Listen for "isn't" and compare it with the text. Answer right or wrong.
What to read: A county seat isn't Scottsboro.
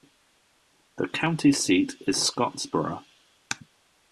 wrong